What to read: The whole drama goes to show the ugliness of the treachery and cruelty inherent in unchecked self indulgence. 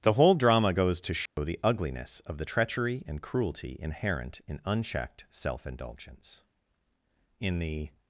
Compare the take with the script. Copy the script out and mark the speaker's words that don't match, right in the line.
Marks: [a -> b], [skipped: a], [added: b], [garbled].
The whole drama goes to show the ugliness of the treachery and cruelty inherent in unchecked self indulgence. [added: In the]